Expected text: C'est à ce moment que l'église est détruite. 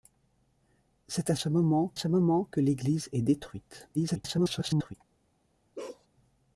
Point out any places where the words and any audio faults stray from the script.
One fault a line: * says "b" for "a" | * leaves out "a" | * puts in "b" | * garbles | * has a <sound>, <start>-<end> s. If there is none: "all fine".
* puts in "ce moment"
* garbles
* has a bark, 5.8-6.1 s